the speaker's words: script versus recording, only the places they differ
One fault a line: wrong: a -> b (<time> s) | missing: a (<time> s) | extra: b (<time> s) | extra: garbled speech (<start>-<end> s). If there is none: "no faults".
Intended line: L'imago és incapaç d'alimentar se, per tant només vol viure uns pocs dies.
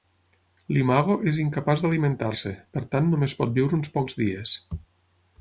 wrong: vol -> pot (3.4 s)